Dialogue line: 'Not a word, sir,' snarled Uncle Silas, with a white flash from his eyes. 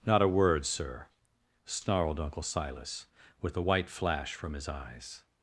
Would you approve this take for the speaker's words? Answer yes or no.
yes